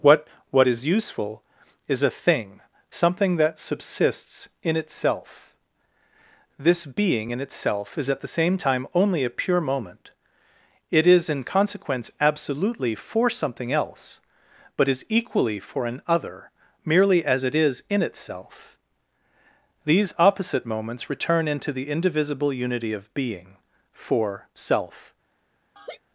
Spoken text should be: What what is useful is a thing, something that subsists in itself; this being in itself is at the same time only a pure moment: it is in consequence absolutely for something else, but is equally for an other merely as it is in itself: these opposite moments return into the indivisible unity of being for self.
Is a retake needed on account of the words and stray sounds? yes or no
yes